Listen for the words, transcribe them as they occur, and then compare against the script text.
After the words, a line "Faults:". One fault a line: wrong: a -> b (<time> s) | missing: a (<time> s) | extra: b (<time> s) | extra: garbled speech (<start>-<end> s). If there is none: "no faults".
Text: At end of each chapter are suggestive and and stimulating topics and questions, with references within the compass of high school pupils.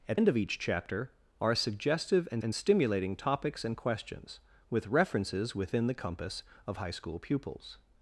At end of each chapter are suggestive and and stimulating topics and questions, with references within the compass of high school pupils.
Faults:
no faults